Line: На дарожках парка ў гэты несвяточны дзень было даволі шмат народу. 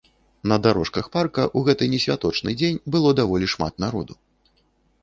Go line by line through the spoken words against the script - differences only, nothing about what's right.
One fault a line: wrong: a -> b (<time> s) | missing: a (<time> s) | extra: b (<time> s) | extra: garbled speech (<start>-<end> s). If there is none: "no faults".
no faults